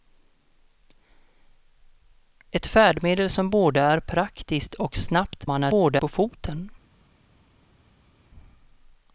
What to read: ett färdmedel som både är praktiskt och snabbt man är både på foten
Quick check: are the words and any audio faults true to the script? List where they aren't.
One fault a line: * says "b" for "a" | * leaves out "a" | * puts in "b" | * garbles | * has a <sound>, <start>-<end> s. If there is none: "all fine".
all fine